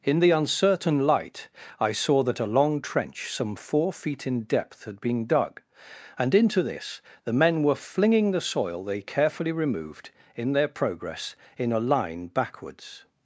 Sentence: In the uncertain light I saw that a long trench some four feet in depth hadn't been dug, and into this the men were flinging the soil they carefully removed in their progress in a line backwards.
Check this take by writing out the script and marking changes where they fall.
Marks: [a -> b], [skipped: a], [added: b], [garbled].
In the uncertain light I saw that a long trench some four feet in depth [hadn't -> had] been dug, and into this the men were flinging the soil they carefully removed in their progress in a line backwards.